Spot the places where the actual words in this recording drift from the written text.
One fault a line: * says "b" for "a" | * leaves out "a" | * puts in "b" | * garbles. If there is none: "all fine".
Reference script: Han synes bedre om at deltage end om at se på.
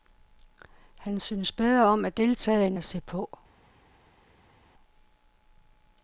* leaves out "om"